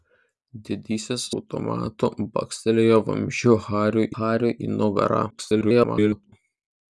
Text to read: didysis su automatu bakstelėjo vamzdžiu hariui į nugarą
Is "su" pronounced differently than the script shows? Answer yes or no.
yes